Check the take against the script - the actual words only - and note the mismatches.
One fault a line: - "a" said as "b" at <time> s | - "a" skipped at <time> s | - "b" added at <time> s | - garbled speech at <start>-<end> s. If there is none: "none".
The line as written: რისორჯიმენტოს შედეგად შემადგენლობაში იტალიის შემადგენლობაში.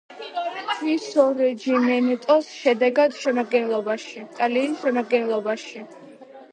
none